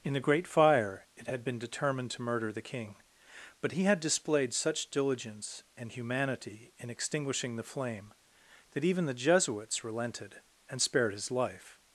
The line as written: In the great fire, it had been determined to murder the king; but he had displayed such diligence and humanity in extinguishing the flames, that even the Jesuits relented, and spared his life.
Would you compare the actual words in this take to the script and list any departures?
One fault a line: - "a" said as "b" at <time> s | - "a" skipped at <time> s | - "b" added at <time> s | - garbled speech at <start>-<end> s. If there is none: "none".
- "flames" said as "flame" at 7.6 s